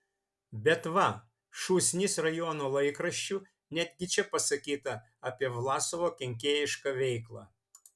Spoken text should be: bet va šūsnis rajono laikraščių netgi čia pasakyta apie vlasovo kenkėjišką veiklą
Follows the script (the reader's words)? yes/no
yes